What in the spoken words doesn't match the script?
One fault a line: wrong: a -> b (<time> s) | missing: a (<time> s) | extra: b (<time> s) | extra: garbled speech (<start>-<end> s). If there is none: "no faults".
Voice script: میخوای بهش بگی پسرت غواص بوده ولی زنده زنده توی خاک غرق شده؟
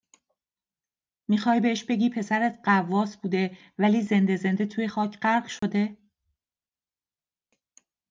no faults